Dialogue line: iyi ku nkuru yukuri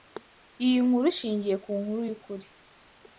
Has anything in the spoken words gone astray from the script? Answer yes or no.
yes